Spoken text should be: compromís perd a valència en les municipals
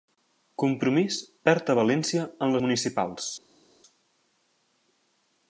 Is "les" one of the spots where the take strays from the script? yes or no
yes